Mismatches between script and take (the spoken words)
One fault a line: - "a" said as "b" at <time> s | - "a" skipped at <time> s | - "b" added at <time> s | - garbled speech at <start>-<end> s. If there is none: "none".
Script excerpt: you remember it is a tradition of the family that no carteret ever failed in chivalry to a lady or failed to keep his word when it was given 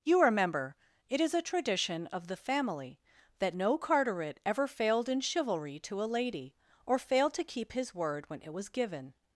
none